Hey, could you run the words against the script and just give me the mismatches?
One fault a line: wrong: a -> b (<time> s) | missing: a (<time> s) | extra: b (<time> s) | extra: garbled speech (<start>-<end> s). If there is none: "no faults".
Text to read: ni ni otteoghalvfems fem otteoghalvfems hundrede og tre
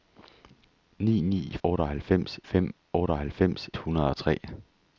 no faults